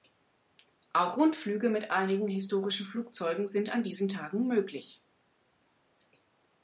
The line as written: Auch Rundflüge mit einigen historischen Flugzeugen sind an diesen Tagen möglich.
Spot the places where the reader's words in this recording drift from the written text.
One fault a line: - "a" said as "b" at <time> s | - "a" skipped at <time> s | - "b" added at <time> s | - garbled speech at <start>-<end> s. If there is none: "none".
none